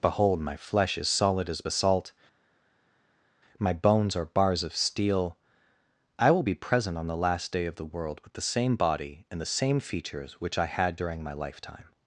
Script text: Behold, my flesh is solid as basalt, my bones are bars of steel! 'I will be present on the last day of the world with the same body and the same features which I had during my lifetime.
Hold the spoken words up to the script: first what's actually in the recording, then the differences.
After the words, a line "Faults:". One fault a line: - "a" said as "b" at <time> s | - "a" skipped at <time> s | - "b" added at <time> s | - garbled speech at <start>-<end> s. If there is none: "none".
Behold, my flesh is solid as basalt, my bones are bars of steel! 'I will be present on the last day of the world with the same body and the same features which I had during my lifetime.
Faults:
none